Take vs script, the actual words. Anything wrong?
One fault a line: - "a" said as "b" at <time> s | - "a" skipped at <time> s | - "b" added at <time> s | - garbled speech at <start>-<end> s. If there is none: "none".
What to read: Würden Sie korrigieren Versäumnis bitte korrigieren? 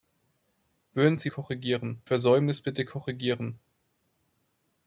none